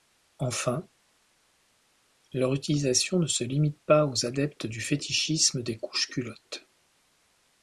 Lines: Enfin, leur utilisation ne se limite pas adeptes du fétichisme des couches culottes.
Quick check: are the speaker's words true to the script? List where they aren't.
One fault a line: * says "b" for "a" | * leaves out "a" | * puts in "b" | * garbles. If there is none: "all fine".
* puts in "aux"